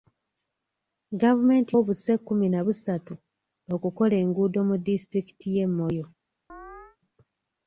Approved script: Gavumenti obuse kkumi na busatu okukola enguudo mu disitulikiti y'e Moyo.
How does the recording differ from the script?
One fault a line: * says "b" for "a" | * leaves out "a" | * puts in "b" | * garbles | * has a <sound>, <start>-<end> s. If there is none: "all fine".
* has a chirp, 6.5-7.0 s